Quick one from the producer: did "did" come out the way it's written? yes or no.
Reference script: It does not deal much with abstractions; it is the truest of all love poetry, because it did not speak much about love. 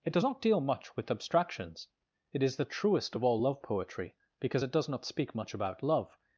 no